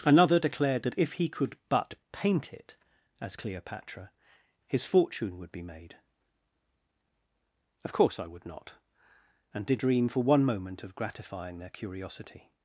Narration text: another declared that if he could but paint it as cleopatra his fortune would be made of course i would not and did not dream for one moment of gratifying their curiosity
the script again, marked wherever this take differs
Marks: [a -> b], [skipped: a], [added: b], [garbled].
another declared that if he could but paint it as cleopatra his fortune would be made of course i would not and did [skipped: not] dream for one moment of gratifying their curiosity